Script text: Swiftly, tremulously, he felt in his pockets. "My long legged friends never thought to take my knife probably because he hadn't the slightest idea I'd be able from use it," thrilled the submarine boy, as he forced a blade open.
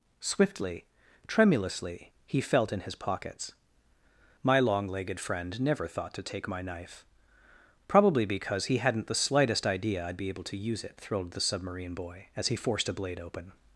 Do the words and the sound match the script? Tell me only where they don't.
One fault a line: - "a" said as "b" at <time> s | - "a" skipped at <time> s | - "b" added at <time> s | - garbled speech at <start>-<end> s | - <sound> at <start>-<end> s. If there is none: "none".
- "friends" said as "friend" at 5.2 s
- "from" said as "to" at 10.4 s